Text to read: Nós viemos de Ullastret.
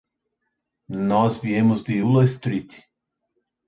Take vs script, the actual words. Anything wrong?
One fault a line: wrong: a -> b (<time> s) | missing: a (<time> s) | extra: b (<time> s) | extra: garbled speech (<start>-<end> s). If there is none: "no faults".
no faults